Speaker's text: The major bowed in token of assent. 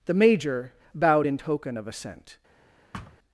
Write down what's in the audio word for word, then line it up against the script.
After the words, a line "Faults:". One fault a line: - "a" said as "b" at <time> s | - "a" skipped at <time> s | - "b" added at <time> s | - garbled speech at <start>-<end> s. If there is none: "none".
The major bowed in token of assent.
Faults:
none